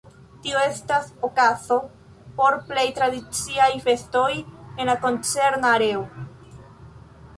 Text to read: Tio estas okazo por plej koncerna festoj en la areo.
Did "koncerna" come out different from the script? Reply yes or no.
yes